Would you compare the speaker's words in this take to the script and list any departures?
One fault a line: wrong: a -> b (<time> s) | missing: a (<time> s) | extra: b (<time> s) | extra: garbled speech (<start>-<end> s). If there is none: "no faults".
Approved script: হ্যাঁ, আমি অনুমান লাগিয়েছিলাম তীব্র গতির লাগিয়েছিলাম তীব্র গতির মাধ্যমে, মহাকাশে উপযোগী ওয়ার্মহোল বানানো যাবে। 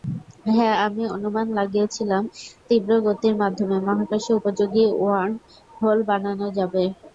missing: লাগিয়েছিলাম তীব্র গতির (3.3 s)